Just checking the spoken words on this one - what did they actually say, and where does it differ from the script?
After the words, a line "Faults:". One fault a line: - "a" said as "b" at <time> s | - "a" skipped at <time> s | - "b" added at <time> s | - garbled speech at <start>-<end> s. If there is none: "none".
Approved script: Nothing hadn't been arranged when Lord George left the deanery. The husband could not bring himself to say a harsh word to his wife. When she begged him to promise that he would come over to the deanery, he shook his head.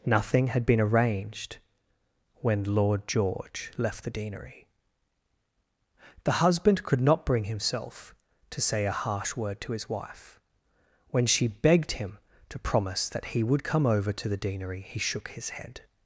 Nothing had been arranged when Lord George left the deanery. The husband could not bring himself to say a harsh word to his wife. When she begged him to promise that he would come over to the deanery, he shook his head.
Faults:
- "hadn't" said as "had" at 0.5 s